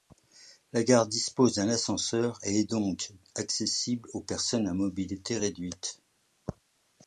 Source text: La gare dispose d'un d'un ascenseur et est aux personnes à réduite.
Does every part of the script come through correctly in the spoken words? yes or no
no